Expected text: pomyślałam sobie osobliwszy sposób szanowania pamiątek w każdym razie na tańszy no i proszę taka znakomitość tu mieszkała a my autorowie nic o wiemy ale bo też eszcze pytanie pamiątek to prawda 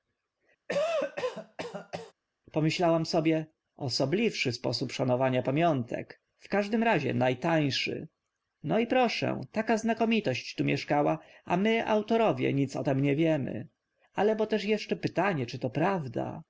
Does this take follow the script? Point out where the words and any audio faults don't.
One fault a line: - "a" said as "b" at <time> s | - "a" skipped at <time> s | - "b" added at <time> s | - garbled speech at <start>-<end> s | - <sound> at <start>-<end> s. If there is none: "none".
- cough at 0.7-2.1 s
- "tym nie" added at 12.8 s
- "pamiątek" said as "czy" at 15.5 s